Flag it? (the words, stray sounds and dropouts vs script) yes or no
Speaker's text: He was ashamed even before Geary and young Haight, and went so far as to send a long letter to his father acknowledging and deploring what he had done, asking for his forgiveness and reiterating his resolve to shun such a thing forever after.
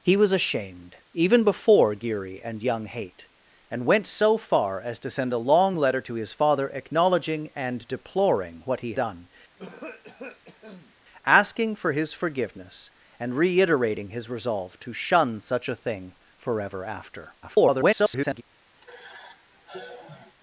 yes